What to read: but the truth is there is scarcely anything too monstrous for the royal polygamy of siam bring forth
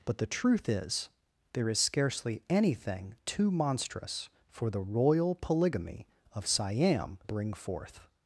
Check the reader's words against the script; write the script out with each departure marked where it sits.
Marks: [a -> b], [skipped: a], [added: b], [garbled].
but the truth is there is scarcely anything too monstrous for the royal polygamy of siam bring forth